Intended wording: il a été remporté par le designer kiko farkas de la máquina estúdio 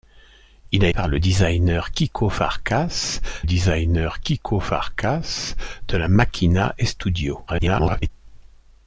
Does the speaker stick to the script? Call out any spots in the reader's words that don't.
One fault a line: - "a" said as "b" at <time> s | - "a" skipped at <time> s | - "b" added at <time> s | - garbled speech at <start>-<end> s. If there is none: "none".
- "été remporté par le" said as "par le designer kiko farkas" at 0.9 s
- garbled speech at 7.5-8.1 s